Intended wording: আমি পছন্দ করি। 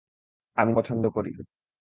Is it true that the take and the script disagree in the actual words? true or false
false